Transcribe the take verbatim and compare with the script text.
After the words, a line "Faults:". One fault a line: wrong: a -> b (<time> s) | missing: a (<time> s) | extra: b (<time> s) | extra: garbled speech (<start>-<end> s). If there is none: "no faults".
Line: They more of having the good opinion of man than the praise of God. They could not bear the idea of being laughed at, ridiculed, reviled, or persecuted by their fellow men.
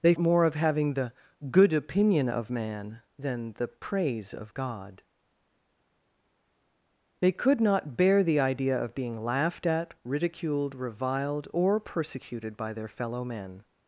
They more of having the good opinion of man than the praise of God. They could not bear the idea of being laughed at, ridiculed, reviled, or persecuted by their fellow men.
Faults:
no faults